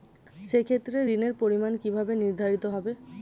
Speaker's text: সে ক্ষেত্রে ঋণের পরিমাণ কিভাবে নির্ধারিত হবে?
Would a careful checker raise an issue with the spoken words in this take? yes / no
no